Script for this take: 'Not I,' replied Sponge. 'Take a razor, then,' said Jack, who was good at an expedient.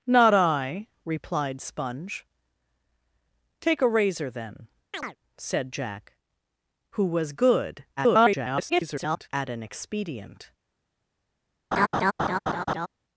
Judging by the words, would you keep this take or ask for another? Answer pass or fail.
fail